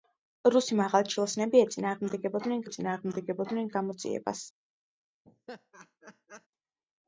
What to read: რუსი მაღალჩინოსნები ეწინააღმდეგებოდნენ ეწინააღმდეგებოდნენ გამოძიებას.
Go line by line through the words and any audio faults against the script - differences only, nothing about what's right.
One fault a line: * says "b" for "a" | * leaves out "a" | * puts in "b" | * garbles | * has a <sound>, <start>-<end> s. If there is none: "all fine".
* has a laugh, 5.2-6.5 s